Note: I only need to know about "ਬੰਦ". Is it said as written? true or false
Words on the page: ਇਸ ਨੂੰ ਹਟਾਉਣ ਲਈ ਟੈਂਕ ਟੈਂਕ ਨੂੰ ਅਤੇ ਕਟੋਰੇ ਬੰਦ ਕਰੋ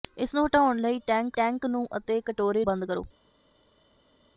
true